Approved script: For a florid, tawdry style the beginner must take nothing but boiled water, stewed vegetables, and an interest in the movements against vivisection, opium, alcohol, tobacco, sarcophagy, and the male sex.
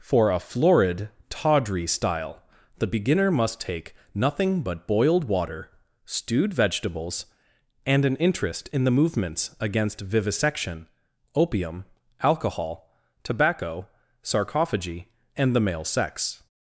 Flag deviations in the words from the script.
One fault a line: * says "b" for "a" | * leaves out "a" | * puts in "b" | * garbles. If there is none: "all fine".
all fine